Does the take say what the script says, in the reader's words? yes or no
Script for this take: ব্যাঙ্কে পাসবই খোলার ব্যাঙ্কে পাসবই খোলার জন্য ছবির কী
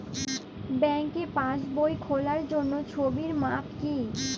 no